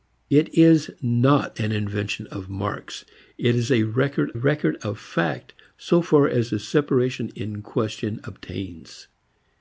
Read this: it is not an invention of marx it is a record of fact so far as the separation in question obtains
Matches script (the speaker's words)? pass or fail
fail